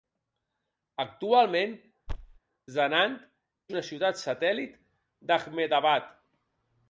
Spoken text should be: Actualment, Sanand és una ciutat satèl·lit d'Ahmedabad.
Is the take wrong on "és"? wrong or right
wrong